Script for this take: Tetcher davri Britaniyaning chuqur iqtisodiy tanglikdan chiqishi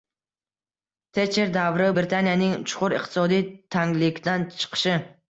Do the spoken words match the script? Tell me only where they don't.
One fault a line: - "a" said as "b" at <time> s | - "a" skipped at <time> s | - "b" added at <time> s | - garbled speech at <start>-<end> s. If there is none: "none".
none